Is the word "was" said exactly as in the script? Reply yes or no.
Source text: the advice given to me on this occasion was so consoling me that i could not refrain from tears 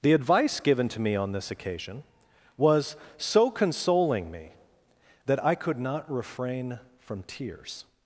yes